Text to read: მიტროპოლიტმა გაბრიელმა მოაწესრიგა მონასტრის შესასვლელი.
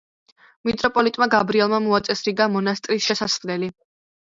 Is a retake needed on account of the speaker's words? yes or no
no